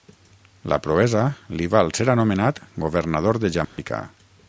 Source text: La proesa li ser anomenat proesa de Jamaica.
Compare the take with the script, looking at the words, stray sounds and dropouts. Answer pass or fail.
fail